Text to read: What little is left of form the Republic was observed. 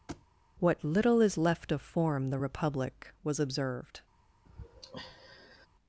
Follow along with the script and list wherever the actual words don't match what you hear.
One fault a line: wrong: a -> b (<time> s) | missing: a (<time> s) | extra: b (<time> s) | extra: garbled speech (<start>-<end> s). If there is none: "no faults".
no faults